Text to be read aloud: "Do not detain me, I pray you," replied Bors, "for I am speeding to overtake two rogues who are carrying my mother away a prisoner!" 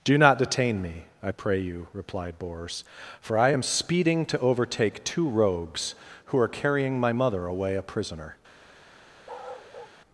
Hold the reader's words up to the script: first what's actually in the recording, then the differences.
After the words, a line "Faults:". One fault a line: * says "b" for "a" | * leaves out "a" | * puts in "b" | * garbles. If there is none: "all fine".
"Do not detain me, I pray you," replied Bors, "for I am speeding to overtake two rogues who are carrying my mother away a prisoner!"
Faults:
all fine